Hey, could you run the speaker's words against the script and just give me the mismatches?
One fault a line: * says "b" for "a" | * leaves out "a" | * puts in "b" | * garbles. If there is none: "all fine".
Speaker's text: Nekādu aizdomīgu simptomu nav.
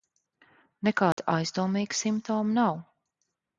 all fine